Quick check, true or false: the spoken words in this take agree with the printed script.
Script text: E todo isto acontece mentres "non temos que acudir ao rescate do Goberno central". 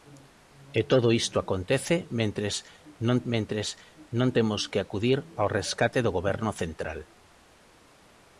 false